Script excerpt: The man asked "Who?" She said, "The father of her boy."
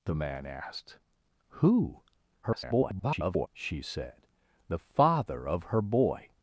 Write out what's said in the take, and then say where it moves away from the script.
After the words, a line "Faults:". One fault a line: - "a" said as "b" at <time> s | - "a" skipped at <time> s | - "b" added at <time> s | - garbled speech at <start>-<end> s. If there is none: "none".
The man asked "Who?" [garbled] She said, "The father of her boy."
Faults:
- garbled speech at 2.4-3.5 s